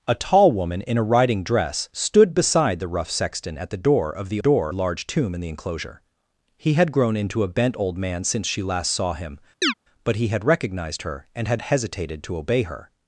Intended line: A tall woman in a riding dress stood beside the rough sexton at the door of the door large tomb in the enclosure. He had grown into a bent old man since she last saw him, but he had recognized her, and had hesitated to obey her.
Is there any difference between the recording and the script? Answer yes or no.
no